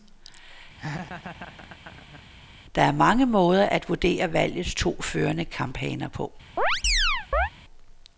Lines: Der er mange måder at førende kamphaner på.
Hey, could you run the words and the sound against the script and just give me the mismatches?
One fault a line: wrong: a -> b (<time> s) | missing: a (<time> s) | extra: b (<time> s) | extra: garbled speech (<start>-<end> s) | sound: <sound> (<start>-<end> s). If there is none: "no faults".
sound: laugh (0.8-2.2 s)
extra: vurdere valgets to (3.9 s)
sound: chirp (6.6-7.5 s)